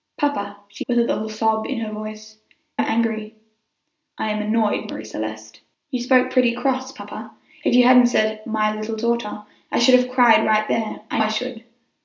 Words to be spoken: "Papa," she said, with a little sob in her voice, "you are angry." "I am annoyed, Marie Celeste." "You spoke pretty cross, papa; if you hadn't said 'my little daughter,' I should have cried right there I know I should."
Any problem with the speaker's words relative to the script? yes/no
yes